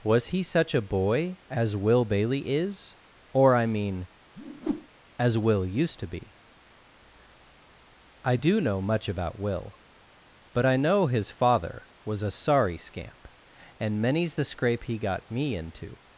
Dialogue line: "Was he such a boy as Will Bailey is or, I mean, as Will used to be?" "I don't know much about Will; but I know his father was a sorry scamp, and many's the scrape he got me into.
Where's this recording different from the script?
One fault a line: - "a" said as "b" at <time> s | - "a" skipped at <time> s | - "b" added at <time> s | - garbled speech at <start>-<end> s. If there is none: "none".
- "don't" said as "do" at 8.3 s